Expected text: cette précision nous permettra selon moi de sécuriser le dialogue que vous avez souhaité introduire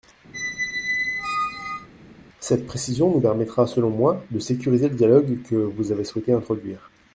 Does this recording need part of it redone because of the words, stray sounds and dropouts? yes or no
yes